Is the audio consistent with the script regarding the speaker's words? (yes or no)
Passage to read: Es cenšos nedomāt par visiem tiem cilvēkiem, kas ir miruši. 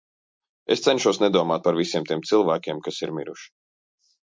yes